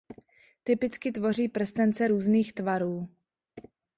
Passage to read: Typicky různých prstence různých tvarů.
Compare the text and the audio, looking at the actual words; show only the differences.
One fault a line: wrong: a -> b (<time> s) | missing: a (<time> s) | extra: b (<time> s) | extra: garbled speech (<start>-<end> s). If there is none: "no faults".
wrong: různých -> tvoří (1.1 s)